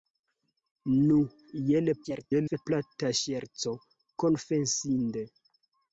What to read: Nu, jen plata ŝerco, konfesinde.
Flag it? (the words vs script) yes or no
yes